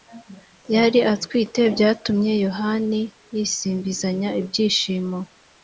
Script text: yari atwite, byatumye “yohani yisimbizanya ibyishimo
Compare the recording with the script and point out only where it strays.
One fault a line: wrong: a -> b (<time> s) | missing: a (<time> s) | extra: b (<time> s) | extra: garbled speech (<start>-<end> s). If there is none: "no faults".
no faults